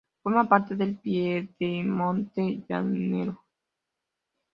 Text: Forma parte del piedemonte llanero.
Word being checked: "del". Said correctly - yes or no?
yes